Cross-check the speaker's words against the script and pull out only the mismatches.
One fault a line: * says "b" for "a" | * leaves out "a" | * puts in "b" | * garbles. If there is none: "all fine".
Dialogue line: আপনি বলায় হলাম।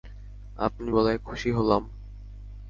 * puts in "খুশি"